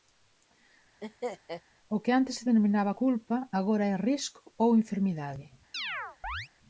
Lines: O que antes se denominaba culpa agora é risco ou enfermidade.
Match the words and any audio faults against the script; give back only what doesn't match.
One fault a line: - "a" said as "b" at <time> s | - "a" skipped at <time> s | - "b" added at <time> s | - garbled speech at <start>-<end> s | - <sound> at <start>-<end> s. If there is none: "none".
- laugh at 1.0-1.6 s
- chirp at 5.7-6.5 s